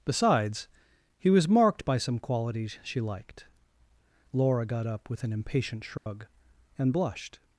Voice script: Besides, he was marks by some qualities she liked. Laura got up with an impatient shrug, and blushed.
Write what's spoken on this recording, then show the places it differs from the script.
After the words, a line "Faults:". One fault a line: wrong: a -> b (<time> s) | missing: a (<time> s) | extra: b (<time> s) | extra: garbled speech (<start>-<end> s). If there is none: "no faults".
Besides, he was marked by some qualities she liked. Laura got up with an impatient shrug, and blushed.
Faults:
wrong: marks -> marked (1.5 s)